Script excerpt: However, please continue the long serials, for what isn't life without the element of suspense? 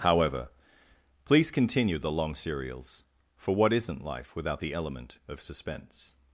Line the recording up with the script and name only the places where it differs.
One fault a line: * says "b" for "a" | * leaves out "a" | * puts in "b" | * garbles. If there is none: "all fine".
all fine